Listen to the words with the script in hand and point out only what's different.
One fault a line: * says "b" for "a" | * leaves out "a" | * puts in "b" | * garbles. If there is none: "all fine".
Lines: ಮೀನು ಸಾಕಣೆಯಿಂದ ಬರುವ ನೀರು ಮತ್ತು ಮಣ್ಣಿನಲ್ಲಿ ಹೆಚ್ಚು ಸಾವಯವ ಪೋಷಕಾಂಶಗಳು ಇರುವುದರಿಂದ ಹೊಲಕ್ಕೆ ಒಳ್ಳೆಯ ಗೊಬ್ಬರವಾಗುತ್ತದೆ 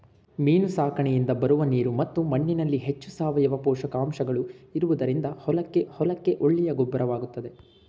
* puts in "ಹೊಲಕ್ಕೆ"